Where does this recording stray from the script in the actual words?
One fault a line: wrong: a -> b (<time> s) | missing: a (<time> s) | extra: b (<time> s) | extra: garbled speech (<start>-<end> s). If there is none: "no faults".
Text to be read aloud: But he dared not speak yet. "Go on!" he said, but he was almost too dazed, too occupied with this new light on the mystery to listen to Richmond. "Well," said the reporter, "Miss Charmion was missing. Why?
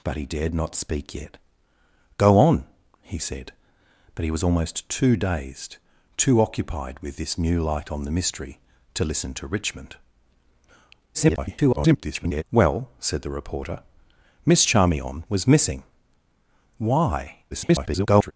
extra: garbled speech (11.1-12.4 s)
extra: garbled speech (17.5-18.3 s)